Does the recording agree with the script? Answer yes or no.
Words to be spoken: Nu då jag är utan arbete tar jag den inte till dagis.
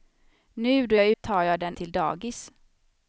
no